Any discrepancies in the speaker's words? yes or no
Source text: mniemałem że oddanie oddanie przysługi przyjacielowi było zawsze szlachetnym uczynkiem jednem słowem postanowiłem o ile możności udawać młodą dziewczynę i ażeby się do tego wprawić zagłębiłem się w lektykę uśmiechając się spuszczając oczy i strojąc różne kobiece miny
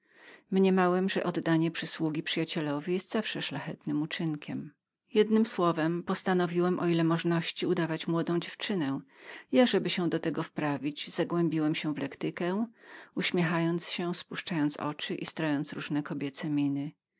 yes